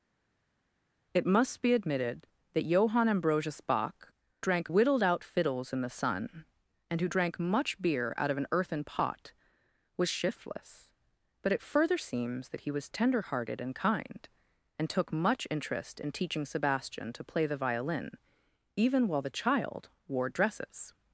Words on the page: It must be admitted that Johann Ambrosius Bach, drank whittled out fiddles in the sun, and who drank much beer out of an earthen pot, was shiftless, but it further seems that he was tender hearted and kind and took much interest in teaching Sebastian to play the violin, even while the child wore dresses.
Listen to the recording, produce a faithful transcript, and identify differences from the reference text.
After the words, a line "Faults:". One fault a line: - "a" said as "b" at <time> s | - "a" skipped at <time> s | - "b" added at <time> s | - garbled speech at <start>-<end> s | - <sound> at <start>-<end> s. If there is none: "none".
It must be admitted that Johann Ambrosius Bach, drank whittled out fiddles in the sun, and who drank much beer out of an earthen pot, was shiftless, but it further seems that he was tender hearted and kind and took much interest in teaching Sebastian to play the violin, even while the child wore dresses.
Faults:
none